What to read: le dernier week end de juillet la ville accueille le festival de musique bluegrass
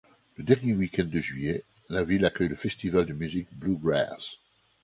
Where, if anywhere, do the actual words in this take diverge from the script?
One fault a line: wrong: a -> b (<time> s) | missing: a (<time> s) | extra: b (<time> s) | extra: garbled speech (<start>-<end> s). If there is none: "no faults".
no faults